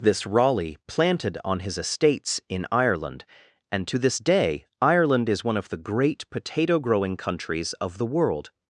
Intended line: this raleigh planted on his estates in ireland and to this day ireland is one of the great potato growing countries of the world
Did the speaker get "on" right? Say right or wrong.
right